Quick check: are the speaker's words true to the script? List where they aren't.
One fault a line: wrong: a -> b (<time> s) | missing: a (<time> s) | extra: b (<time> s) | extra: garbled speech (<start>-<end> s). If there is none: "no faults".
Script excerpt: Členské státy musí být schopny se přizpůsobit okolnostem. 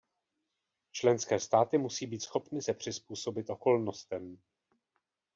no faults